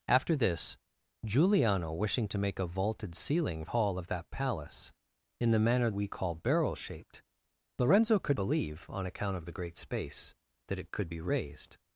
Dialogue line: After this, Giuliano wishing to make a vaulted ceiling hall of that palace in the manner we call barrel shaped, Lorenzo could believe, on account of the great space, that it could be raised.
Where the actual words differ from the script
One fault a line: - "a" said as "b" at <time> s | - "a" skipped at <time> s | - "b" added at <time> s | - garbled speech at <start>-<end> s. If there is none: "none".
none